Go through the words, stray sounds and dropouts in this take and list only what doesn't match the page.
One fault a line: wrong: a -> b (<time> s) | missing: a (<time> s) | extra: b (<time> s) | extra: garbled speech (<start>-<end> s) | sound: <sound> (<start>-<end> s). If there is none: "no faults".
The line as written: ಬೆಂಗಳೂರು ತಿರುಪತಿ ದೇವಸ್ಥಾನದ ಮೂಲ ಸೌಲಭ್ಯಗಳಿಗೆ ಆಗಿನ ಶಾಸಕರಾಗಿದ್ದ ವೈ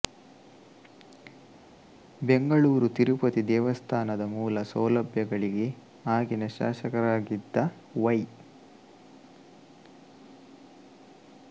no faults